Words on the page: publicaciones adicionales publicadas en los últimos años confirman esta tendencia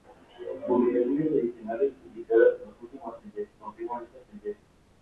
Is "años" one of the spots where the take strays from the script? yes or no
yes